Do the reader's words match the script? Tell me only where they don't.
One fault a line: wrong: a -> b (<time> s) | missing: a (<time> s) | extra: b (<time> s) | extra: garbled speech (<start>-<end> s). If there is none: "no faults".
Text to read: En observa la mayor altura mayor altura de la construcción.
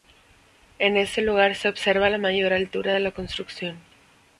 extra: este lugar se (1.0 s)
missing: mayor altura (3.0 s)